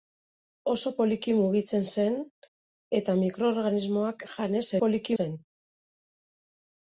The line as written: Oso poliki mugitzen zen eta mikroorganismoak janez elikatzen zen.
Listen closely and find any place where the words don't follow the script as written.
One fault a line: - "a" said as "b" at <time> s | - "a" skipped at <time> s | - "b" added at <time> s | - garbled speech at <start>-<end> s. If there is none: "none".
- "elikatzen" said as "poliki" at 4.8 s